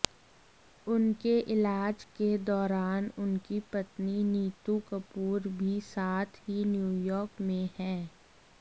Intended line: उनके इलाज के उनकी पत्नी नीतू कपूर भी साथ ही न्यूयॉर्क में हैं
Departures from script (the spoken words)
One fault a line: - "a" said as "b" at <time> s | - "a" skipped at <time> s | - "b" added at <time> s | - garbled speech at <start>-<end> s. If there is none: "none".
- "दौरान" added at 2.5 s